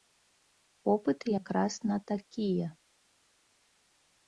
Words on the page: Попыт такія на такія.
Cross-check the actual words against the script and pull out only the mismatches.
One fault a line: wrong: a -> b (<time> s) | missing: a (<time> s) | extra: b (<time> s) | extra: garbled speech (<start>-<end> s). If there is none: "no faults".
wrong: такія -> якраз (1.4 s)